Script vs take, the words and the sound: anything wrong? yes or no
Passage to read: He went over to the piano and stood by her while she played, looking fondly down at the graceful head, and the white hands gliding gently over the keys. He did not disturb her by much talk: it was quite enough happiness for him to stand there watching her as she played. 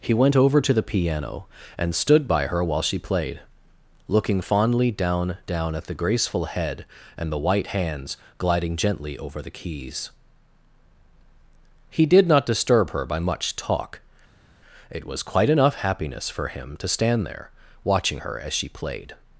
yes